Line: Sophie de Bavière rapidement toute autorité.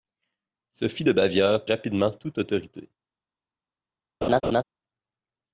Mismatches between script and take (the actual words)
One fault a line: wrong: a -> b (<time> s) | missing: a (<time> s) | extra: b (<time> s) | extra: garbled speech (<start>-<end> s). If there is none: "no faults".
no faults